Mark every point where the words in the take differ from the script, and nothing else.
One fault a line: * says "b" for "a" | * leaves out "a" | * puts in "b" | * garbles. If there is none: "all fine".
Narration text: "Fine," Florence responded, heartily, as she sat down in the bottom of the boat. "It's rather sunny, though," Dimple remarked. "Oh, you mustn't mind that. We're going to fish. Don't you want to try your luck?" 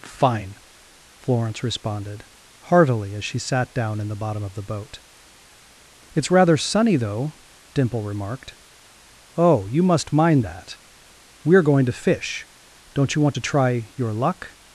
* says "must" for "mustn't"